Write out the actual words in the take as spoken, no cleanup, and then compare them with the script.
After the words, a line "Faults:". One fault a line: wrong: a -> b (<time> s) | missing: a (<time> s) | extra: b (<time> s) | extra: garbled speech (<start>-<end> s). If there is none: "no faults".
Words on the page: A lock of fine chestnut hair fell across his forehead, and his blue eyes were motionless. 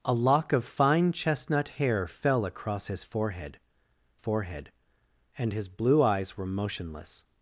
A lock of fine chestnut hair fell across his forehead forehead, and his blue eyes were motionless.
Faults:
extra: forehead (4.2 s)